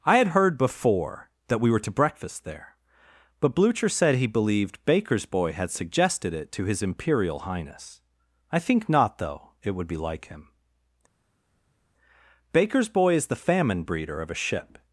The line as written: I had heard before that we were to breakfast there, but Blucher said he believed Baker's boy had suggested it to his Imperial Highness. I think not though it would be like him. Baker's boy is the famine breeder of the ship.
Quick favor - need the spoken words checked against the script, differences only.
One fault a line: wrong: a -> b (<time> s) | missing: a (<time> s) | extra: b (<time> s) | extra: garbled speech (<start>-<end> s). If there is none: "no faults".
wrong: the -> a (14.3 s)